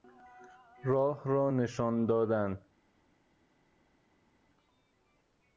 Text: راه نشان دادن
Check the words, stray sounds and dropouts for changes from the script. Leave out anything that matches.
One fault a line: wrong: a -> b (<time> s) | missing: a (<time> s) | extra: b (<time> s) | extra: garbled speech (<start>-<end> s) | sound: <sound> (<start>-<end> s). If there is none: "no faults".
extra: را (1.2 s)